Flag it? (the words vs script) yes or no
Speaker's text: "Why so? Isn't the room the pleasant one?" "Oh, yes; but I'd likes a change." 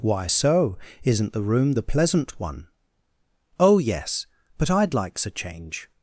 no